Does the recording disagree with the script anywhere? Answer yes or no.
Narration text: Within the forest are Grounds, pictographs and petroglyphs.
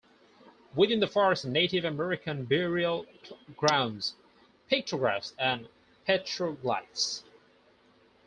yes